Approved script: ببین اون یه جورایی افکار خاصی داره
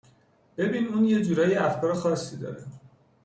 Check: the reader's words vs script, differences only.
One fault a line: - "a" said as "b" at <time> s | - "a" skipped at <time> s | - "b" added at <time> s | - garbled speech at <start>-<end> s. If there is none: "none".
none